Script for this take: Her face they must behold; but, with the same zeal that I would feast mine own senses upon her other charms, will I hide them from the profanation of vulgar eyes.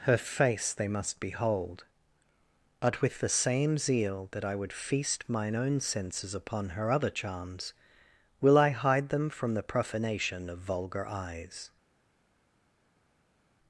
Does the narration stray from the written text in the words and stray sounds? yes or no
no